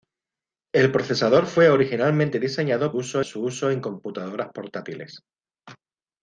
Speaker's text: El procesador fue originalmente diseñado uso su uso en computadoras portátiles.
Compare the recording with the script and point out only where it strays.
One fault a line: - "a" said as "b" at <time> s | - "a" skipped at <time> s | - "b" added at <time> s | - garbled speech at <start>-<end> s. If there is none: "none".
none